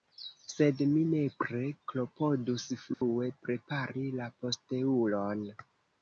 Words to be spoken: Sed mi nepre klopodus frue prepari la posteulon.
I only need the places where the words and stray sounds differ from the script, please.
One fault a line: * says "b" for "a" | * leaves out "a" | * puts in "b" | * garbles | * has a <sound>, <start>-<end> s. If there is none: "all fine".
* has a dropout, 2.9-3.0 s